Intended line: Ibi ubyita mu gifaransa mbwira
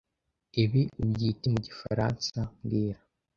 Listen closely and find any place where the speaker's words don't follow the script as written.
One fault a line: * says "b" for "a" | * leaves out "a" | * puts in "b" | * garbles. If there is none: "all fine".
all fine